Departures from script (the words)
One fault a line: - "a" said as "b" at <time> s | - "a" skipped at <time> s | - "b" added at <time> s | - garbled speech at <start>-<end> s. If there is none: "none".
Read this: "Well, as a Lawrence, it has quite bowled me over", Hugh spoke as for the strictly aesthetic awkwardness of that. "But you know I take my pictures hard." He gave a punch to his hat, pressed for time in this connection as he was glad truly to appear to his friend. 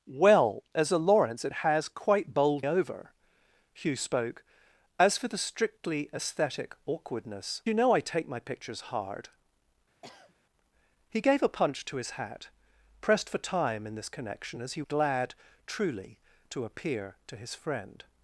- "me" skipped at 2.6 s
- "of that But" skipped at 7.6 s
- "was" skipped at 14.8 s